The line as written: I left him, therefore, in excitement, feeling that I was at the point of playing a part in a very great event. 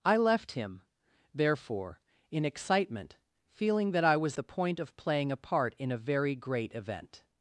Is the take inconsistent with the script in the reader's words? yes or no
yes